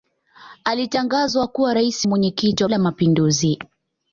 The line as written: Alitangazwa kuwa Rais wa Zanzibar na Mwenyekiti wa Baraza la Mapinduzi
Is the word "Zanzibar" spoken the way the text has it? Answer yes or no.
no